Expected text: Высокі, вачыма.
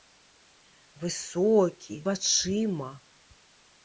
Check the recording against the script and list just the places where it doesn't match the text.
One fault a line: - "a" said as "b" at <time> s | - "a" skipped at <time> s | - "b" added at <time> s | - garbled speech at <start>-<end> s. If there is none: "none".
none